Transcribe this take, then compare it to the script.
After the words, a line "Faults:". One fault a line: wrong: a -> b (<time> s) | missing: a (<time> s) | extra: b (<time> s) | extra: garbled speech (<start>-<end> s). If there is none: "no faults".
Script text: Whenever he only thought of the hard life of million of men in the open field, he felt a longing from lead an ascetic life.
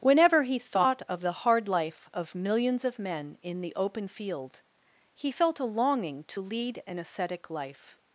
Whenever he thought of the hard life of millions of men in the open field, he felt a longing to lead an ascetic life.
Faults:
missing: only (0.6 s)
wrong: million -> millions (2.3 s)
wrong: from -> to (6.2 s)